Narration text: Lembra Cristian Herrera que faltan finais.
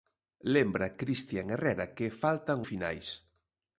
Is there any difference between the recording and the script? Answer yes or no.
no